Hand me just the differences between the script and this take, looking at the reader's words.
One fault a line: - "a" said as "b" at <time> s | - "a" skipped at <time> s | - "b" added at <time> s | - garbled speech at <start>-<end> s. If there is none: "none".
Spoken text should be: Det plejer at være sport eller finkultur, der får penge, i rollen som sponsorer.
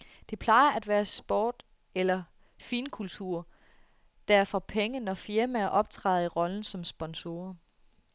- "når firmaer optræder" added at 5.0 s